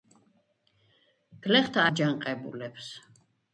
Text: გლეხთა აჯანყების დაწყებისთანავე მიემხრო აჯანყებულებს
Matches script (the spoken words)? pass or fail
fail